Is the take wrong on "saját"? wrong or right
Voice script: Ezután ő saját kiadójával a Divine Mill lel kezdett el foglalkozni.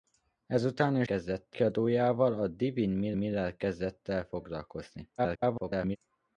wrong